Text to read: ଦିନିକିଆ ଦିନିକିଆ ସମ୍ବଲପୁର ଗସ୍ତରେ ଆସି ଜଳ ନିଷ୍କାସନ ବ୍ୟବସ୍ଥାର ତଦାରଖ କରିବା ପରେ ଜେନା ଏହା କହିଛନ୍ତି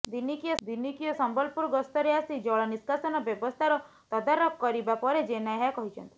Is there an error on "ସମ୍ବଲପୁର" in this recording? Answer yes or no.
no